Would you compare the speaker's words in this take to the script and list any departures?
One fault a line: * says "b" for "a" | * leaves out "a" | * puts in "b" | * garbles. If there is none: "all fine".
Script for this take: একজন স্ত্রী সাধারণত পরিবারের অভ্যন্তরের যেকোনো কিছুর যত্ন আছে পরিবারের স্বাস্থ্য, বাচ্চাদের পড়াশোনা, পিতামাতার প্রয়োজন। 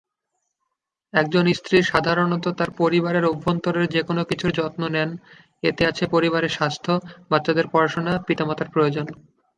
* puts in "তার"
* puts in "নেন এতে"